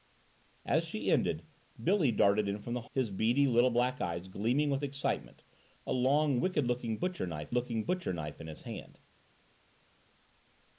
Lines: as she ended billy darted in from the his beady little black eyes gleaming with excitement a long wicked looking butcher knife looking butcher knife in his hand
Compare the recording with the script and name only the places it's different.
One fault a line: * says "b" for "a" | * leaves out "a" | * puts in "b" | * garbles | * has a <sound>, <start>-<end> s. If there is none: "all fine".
all fine